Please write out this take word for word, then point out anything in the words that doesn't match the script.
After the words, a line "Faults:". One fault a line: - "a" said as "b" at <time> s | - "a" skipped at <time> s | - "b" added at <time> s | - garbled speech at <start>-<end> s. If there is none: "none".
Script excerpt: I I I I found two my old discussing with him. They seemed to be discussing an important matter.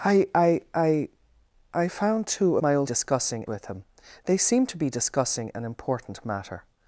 I I I I found two my old discussing with him. They seemed to be discussing an important matter.
Faults:
none